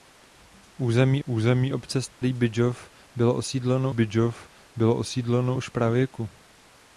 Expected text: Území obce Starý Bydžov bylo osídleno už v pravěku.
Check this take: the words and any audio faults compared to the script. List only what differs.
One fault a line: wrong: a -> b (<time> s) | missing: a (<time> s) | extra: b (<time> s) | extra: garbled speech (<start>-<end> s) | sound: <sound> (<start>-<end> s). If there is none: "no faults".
extra: území (1.2 s)
sound: dropout (2.1-2.2 s)
extra: Bydžov bylo osídleno (3.9 s)